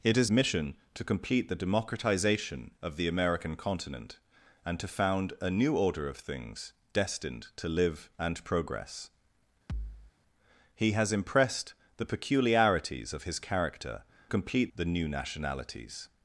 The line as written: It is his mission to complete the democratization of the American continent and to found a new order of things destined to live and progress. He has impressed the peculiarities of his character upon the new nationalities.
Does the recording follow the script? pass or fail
fail